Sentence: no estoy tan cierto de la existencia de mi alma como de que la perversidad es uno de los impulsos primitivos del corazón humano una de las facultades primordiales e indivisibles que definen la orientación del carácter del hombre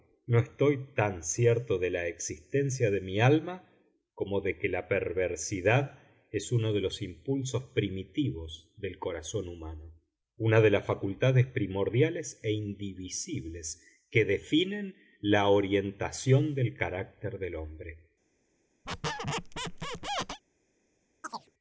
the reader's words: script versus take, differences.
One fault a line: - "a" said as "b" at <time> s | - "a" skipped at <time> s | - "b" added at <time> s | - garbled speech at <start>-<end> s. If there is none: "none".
none